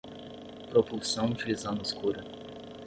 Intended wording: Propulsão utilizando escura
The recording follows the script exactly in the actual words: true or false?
true